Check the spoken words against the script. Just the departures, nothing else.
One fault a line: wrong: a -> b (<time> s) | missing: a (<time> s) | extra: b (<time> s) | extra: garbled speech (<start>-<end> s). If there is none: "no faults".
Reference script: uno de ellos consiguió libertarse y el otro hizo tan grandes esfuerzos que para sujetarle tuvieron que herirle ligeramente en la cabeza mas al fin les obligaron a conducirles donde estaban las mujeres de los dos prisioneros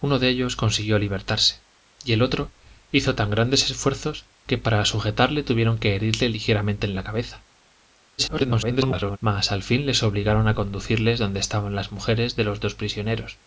extra: garbled speech (8.2-9.2 s)